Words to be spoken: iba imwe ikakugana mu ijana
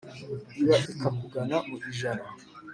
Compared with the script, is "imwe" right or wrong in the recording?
wrong